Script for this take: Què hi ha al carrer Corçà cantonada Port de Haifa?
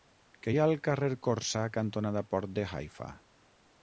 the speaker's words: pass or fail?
pass